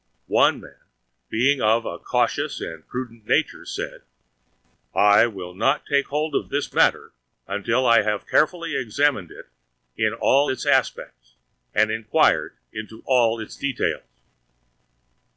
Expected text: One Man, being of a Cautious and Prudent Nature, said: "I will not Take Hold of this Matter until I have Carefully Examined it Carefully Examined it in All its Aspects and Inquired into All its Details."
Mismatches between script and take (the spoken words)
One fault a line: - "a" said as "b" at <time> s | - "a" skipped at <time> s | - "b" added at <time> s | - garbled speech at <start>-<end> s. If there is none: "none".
- "Carefully Examined it" skipped at 9.4 s